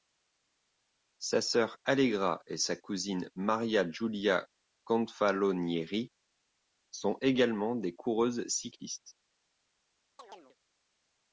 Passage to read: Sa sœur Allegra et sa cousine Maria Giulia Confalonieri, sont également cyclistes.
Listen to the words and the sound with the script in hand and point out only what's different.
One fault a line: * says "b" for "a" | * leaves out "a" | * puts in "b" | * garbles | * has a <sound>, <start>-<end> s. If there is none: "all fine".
* puts in "des coureuses"
* has a chirp, 10.2-10.6 s